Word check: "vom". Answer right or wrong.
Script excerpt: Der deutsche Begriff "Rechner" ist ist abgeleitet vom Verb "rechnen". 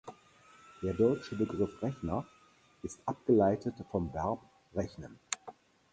right